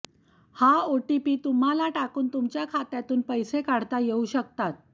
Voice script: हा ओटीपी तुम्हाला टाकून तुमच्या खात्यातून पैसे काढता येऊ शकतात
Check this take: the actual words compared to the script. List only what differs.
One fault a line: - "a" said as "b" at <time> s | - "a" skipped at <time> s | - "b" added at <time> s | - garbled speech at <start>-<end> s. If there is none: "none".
none